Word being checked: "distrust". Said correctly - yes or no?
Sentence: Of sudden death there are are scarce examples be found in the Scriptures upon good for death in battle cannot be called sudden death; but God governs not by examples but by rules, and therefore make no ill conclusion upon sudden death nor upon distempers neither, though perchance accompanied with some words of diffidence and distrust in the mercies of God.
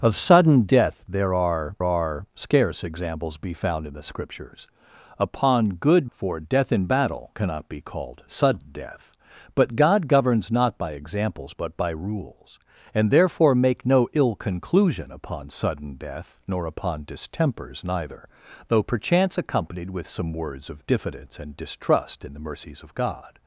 yes